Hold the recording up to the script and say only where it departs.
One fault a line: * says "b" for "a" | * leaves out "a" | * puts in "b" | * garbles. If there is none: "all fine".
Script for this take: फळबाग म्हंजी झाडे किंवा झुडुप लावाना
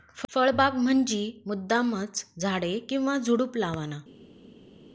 * puts in "मुद्दामचं"